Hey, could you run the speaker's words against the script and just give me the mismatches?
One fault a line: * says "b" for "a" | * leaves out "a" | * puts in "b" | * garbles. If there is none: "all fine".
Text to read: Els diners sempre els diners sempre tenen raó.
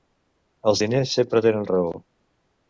* leaves out "els diners sempre"